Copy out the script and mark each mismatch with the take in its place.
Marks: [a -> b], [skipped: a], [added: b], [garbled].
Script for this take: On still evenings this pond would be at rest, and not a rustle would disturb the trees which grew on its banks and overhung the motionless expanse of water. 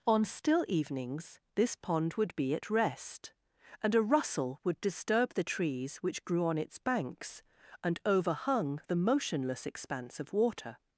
On still evenings this pond would be at rest, and [skipped: not] a rustle would disturb the trees which grew on its banks and overhung the motionless expanse of water.